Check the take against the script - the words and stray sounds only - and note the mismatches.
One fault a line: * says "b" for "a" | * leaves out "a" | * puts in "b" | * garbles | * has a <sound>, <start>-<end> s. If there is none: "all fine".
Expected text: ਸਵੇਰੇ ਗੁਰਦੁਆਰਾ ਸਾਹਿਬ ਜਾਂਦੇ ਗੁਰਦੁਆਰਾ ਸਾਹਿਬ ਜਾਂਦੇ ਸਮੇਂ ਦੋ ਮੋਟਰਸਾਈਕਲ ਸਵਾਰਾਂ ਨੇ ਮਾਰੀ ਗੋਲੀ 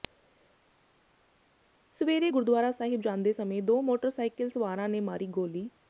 * leaves out "ਗੁਰਦੁਆਰਾ ਸਾਹਿਬ ਜਾਂਦੇ"